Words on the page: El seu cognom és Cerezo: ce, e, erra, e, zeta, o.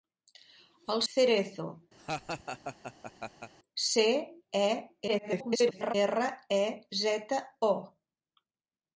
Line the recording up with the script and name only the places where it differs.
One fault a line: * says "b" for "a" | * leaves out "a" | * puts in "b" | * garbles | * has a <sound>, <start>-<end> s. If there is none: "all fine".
* leaves out "seu cognom és"
* has a laugh, 2.0-3.5 s
* garbles